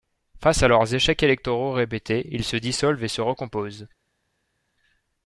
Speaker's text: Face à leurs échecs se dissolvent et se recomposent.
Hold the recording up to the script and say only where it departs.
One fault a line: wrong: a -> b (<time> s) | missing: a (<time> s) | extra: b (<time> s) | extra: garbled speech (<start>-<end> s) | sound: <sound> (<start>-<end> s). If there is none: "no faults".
extra: électoraux répétés ils (1.2 s)